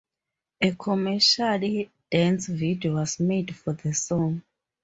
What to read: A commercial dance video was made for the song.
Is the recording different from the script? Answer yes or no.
no